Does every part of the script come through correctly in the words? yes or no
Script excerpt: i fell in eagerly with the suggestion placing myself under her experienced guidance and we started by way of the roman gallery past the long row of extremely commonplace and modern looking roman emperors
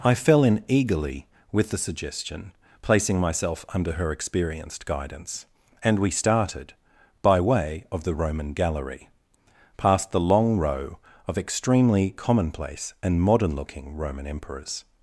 yes